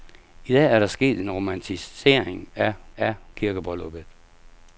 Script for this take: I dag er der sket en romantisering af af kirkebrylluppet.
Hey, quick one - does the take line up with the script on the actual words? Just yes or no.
yes